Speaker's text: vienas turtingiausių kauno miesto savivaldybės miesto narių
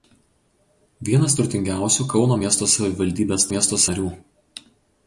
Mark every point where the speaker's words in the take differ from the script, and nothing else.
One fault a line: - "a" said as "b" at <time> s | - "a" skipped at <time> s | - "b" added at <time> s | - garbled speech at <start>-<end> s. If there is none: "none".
none